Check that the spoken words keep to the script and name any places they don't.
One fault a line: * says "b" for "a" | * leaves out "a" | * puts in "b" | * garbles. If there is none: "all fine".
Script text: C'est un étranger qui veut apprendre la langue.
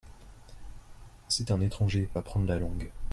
* leaves out "qui veut"